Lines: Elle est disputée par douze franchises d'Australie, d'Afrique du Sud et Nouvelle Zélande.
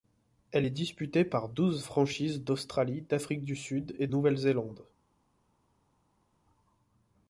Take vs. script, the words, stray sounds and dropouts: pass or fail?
pass